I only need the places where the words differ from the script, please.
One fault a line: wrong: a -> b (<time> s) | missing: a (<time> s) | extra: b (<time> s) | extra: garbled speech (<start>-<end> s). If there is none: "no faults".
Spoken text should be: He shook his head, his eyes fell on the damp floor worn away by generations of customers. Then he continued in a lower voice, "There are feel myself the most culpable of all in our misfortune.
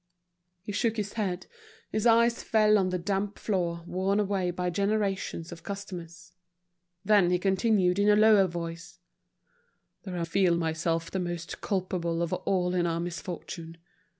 no faults